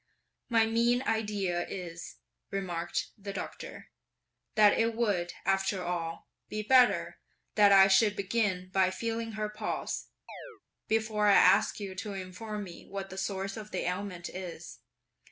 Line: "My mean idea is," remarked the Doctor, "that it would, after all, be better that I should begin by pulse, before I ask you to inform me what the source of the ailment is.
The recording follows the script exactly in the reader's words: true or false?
false